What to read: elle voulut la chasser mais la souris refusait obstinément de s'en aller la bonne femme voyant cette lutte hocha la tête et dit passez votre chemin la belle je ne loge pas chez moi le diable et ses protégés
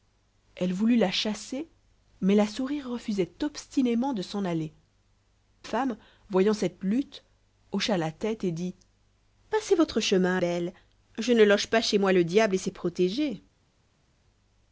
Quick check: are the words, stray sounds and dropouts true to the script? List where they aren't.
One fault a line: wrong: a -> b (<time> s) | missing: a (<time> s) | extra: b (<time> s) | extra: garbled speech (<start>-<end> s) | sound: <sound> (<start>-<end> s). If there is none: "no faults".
missing: la bonne (4.7 s)
missing: la (10.4 s)